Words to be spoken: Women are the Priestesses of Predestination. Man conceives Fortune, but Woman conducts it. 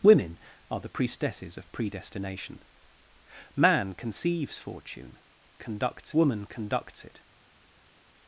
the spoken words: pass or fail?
fail